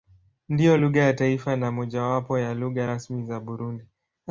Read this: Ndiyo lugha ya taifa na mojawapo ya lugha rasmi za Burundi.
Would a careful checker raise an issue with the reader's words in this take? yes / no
no